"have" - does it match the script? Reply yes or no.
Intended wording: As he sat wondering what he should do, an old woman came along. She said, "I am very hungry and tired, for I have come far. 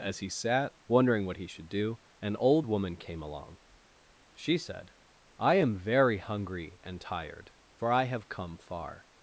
yes